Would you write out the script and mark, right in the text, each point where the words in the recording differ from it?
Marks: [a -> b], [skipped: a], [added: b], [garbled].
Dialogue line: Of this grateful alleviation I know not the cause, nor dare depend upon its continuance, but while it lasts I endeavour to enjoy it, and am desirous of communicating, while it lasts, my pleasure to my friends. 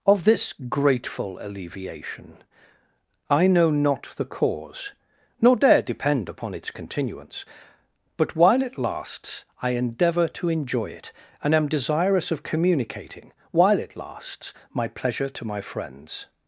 Of this grateful alleviation I know not the cause, nor dare depend upon its continuance, but while it lasts I endeavour to enjoy it, and am desirous of communicating, while it lasts, my pleasure to my friends.